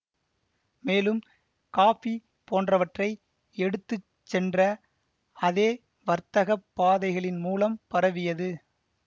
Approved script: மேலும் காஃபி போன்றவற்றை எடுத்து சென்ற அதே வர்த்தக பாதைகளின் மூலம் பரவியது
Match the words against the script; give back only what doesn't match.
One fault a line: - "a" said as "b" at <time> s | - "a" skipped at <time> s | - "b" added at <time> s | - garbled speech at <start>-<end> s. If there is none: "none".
none